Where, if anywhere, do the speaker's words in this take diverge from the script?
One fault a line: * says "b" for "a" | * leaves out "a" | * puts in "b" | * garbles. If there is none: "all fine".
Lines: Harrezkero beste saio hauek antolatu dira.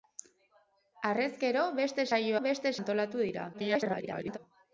* says "beste" for "hauek"
* garbles